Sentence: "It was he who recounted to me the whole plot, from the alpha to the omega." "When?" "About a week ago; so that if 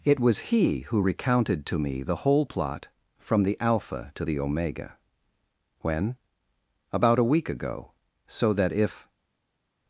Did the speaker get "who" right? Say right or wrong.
right